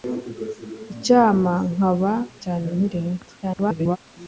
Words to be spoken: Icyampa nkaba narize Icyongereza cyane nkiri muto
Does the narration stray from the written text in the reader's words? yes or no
yes